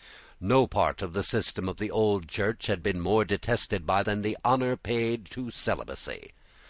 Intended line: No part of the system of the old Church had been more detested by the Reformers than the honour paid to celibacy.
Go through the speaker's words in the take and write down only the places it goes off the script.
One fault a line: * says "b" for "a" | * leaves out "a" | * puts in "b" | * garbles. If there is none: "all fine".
* leaves out "the Reformers"